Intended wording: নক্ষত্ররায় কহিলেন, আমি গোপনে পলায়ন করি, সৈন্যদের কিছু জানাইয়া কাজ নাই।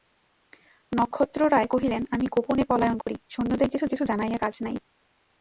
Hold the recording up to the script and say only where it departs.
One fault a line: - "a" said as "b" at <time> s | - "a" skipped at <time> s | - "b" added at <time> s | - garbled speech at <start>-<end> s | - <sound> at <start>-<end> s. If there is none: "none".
- dropout at 3.0-3.1 s
- "কিছু" added at 3.9 s